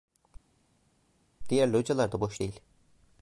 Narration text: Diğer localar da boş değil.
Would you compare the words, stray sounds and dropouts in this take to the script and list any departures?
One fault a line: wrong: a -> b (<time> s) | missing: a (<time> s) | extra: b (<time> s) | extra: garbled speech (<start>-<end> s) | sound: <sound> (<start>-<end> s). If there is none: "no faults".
no faults